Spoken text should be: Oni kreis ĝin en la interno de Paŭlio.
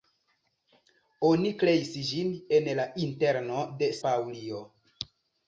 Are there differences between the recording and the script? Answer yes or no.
no